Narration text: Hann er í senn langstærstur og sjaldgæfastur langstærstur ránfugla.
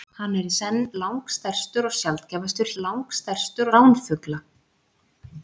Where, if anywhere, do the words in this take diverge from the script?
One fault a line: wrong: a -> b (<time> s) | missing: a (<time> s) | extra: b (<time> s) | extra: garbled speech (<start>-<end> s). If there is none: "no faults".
no faults